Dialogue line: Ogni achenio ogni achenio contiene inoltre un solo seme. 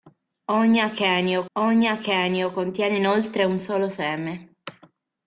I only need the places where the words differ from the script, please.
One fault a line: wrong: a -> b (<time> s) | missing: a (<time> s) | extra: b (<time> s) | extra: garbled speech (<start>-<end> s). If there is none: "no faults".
no faults